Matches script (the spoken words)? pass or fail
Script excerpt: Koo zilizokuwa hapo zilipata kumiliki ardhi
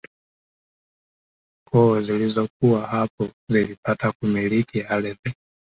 pass